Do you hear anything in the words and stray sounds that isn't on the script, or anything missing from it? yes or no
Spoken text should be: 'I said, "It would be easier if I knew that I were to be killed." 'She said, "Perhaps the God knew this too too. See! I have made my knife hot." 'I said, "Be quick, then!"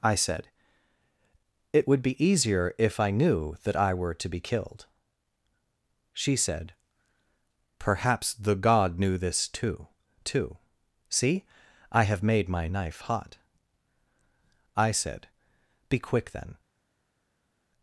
no